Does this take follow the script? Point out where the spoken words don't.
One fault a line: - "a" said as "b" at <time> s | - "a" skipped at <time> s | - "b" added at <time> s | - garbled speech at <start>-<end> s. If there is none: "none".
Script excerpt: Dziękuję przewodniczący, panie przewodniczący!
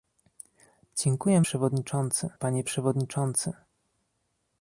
none